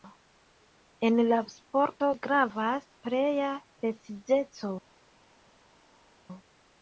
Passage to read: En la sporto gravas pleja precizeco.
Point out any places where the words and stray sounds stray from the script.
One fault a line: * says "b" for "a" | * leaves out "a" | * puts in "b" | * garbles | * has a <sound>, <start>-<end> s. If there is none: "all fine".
all fine